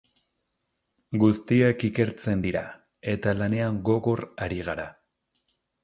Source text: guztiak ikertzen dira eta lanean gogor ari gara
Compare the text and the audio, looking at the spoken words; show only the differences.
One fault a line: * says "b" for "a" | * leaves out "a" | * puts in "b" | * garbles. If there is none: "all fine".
all fine